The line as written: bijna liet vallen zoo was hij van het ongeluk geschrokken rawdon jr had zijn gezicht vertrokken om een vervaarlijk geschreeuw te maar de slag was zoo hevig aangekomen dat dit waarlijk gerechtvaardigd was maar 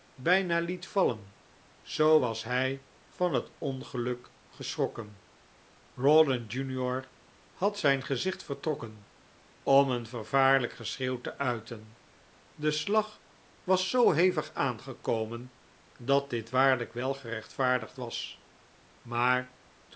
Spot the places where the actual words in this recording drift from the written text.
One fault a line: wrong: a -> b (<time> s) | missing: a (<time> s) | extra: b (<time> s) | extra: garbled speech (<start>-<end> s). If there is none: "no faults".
wrong: maar -> uiten (11.4 s)
extra: wel (16.9 s)